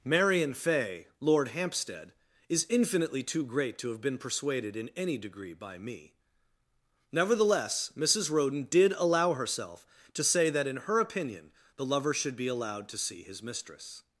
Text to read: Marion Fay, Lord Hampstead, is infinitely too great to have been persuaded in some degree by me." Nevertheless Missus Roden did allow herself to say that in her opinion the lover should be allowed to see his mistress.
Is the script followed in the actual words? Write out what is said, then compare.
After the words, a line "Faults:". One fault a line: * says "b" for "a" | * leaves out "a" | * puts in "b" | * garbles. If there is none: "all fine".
Marion Fay, Lord Hampstead, is infinitely too great to have been persuaded in any degree by me." Nevertheless Missus Roden did allow herself to say that in her opinion the lover should be allowed to see his mistress.
Faults:
* says "any" for "some"